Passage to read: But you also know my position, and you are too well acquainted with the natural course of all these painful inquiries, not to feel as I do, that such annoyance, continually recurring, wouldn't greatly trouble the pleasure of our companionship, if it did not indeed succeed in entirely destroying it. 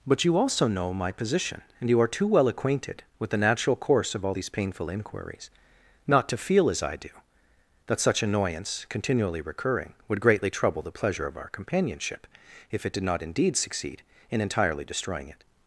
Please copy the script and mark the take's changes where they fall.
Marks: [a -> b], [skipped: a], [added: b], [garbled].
But you also know my position, and you are too well acquainted with the natural course of all these painful inquiries, not to feel as I do, that such annoyance, continually recurring, [wouldn't -> would] greatly trouble the pleasure of our companionship, if it did not indeed succeed in entirely destroying it.